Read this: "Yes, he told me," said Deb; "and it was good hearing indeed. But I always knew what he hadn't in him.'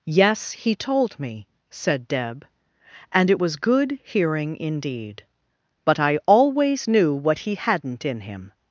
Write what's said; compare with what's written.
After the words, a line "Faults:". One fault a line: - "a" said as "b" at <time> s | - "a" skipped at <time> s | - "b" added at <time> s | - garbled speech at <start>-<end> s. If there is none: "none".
"Yes, he told me," said Deb; "and it was good hearing indeed. But I always knew what he hadn't in him.'
Faults:
none